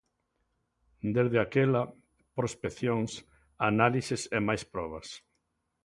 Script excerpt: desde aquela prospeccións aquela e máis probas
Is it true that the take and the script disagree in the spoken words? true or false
true